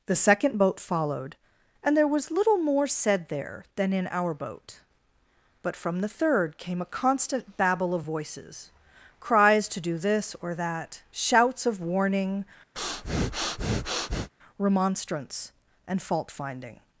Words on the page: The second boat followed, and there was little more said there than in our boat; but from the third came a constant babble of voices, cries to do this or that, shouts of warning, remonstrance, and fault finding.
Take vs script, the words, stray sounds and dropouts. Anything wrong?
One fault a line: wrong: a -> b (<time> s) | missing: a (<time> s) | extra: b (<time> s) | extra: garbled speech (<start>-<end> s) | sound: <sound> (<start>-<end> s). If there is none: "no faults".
sound: breath (12.7-14.3 s)